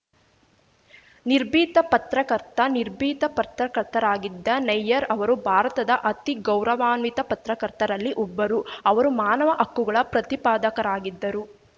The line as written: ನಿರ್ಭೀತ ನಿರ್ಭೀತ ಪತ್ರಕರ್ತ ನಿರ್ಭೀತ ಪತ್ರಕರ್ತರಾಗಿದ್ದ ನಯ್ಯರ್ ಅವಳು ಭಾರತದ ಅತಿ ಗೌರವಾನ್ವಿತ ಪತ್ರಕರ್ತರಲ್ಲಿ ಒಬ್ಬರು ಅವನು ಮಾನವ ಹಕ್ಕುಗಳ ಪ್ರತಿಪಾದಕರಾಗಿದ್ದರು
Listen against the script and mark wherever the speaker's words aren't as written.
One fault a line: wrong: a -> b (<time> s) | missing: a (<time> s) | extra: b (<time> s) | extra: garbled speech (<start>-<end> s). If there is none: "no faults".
missing: ನಿರ್ಭೀತ (1.8 s)
wrong: ಅವಳು -> ಅವರು (5.1 s)
wrong: ಅವನು -> ಅವರು (8.9 s)